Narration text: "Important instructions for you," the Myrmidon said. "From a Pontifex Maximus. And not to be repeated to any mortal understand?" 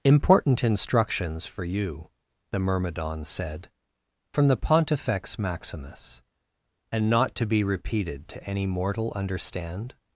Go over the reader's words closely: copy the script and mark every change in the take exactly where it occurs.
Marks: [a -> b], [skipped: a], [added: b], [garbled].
"Important instructions for you," the Myrmidon said. "From [a -> the] Pontifex Maximus. And not to be repeated to any mortal understand?"